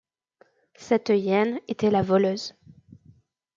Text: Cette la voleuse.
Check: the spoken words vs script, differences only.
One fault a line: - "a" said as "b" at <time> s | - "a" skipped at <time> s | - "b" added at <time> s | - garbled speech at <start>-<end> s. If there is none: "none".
- "hyène était" added at 1.1 s